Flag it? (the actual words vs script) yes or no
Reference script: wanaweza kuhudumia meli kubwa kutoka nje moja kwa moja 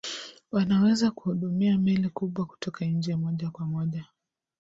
no